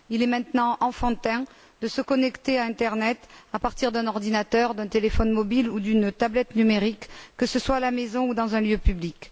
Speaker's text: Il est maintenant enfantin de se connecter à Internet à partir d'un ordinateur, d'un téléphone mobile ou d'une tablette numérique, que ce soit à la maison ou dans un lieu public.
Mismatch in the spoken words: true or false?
false